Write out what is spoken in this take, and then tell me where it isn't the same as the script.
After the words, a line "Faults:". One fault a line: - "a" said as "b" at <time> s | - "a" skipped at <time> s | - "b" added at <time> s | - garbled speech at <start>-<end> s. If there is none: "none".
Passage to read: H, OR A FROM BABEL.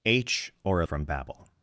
H, OR A FROM BABEL.
Faults:
none